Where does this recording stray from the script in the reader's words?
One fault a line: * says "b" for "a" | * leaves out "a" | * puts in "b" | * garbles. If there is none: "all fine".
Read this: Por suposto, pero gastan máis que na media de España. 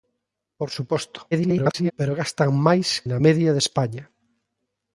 * garbles
* leaves out "que"